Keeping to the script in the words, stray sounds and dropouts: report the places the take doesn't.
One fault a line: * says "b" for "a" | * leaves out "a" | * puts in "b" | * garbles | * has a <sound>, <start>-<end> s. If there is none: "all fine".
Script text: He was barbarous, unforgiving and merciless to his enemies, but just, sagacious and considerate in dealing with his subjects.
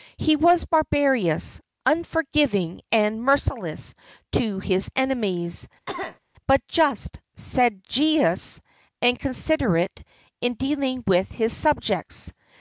* has a cough, 5.9-6.2 s